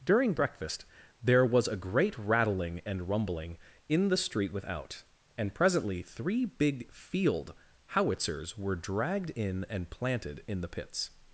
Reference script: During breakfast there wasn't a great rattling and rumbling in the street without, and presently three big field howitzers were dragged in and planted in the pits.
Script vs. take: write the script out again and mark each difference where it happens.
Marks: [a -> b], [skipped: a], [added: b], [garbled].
During breakfast there [wasn't -> was] a great rattling and rumbling in the street without, and presently three big field howitzers were dragged in and planted in the pits.